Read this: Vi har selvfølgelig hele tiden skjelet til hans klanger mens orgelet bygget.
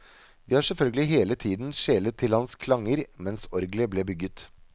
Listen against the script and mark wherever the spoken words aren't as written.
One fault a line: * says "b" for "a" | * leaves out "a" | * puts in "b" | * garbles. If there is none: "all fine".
* puts in "ble"